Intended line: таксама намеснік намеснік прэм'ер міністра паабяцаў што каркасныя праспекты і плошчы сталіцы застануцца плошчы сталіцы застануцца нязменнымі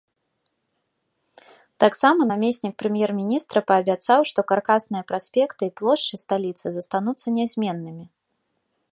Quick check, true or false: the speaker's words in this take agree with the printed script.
false